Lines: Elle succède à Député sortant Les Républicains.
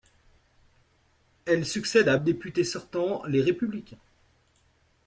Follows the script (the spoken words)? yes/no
yes